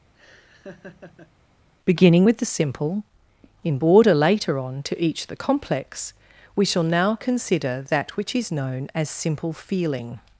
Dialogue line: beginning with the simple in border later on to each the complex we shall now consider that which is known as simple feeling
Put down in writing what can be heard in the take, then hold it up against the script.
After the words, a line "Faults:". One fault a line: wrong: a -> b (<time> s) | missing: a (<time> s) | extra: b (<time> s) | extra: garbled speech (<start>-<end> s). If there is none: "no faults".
beginning with the simple in border later on to each the complex we shall now consider that which is known as simple feeling
Faults:
no faults